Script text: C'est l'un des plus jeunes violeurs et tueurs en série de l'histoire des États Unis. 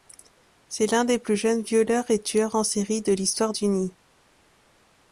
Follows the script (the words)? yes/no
no